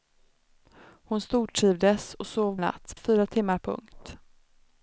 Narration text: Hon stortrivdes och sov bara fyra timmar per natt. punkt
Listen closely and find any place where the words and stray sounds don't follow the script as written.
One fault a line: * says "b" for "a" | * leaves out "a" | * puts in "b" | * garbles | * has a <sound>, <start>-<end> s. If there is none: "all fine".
* says "natt" for "bara"
* leaves out "per natt"